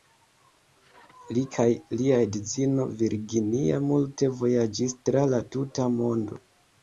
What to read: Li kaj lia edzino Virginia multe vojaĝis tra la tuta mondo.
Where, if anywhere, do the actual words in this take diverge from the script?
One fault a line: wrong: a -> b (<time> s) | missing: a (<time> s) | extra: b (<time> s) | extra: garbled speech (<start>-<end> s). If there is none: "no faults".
no faults